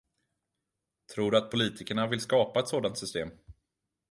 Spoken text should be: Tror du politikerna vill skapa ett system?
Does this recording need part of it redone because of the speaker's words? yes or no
yes